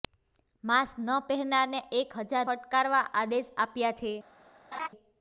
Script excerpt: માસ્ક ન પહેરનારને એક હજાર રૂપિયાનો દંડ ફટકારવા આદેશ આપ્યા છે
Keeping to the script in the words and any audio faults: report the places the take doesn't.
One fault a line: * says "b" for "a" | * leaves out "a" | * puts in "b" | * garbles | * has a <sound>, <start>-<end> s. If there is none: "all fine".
* leaves out "રૂપિયાનો દંડ"
* has a laugh, 4.7-4.9 s